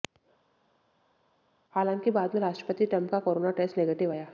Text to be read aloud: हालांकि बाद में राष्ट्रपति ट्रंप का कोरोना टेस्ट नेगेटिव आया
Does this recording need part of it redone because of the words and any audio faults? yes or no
no